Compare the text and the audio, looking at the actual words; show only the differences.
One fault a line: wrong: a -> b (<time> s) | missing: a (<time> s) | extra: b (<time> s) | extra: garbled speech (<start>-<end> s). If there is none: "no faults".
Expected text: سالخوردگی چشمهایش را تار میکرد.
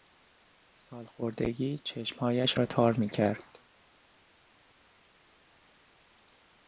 no faults